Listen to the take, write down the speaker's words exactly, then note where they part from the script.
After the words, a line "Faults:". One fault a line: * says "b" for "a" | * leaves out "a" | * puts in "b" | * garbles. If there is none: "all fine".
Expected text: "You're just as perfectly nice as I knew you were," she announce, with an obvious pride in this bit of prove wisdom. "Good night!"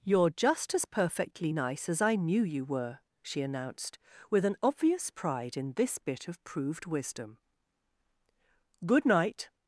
"You're just as perfectly nice as I knew you were," she announced, with an obvious pride in this bit of proved wisdom. "Good night!"
Faults:
* says "announced" for "announce"
* says "proved" for "prove"